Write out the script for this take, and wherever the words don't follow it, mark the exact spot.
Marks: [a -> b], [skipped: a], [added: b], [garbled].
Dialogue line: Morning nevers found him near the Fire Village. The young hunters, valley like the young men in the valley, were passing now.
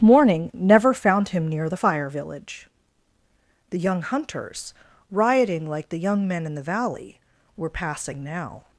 Morning [nevers -> never] found him near the Fire Village. The young hunters, [valley -> rioting] like the young men in the valley, were passing now.